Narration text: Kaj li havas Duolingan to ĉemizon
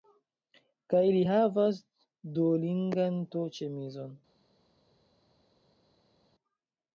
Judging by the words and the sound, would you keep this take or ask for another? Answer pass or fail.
pass